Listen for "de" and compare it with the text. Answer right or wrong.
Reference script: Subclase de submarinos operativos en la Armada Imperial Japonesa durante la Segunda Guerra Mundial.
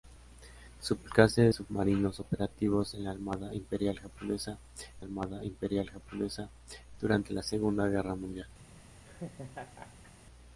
wrong